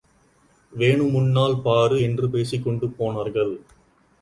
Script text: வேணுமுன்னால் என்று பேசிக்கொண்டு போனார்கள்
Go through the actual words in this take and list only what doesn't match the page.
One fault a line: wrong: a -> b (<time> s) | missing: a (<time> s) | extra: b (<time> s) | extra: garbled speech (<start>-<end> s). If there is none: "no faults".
extra: பாரு (1.6 s)